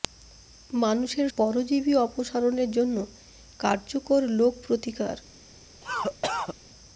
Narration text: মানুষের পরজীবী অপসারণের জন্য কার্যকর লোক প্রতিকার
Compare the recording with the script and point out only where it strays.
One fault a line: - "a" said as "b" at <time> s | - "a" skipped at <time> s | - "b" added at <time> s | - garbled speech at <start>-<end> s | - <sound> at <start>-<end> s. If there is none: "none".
- cough at 5.8-6.5 s